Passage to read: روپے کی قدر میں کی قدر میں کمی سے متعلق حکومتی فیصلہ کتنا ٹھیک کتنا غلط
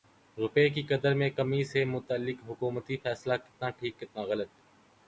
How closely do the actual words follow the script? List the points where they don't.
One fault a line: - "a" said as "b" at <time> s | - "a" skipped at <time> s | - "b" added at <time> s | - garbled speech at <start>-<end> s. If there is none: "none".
- "کی قدر میں" skipped at 1.3 s